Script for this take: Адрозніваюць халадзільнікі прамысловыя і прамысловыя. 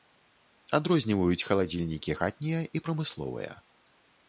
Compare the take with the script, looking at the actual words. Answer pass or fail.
fail